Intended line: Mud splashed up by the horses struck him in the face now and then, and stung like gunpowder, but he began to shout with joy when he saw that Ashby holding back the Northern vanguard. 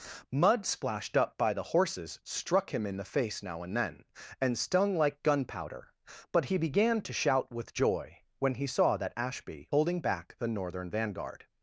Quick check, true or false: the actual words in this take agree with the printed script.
true